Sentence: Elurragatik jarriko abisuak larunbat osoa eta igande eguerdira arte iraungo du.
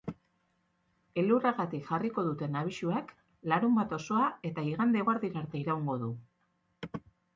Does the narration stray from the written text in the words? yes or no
yes